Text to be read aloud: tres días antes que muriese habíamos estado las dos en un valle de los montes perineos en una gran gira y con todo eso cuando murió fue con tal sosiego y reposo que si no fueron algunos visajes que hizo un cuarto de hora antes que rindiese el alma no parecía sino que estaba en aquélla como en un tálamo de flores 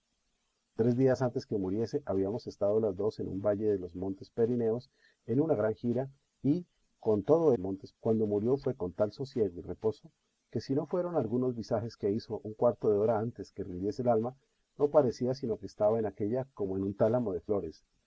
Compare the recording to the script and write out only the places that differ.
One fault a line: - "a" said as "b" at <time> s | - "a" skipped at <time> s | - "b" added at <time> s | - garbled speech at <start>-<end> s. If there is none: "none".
- "eso" said as "montes" at 7.6 s